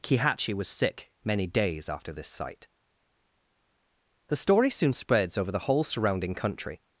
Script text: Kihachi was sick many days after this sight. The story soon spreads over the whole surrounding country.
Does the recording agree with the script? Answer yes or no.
yes